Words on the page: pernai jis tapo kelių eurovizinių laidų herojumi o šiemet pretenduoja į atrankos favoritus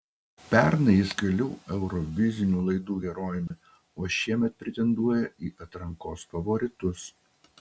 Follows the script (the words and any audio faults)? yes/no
no